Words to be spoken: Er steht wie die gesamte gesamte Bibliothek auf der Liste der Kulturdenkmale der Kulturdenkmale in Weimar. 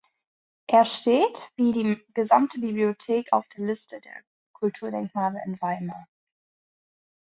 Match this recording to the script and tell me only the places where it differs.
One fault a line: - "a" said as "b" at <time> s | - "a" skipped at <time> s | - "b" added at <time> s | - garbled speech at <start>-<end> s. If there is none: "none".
- "gesamte" skipped at 2.6 s
- "der Kulturdenkmale" skipped at 5.4 s